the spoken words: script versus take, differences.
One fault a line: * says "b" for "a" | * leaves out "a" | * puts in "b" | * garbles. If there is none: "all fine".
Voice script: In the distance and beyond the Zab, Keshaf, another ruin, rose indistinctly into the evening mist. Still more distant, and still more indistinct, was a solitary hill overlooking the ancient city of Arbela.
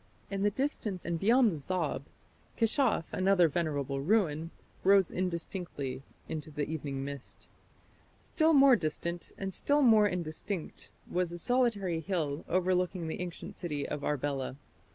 * puts in "venerable"